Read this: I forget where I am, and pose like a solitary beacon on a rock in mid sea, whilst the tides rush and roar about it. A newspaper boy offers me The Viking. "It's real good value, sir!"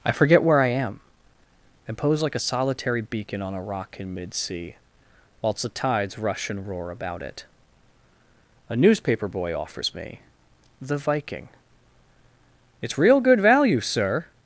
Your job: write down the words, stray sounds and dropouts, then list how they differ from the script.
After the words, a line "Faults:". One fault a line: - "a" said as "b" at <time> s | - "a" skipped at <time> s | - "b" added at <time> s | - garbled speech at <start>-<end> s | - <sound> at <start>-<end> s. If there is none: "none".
I forget where I am, and pose like a solitary beacon on a rock in mid sea, whilst the tides rush and roar about it. A newspaper boy offers me The Viking. "It's real good value, sir!"
Faults:
none